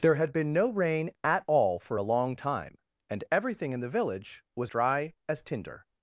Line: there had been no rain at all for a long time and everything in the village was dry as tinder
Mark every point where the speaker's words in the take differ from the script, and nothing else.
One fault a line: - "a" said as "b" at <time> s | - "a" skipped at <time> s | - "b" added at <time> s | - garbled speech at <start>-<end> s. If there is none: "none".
none